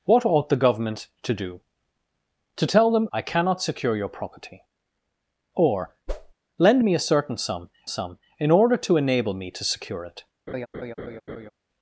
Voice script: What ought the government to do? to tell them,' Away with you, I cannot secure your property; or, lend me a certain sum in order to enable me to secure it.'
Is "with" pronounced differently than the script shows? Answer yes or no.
yes